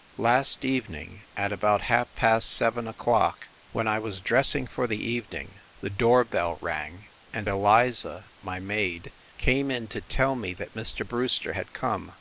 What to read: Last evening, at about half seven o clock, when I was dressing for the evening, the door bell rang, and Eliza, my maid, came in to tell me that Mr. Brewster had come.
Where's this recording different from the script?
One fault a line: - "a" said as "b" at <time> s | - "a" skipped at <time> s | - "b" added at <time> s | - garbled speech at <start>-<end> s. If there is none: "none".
- "past" added at 2.1 s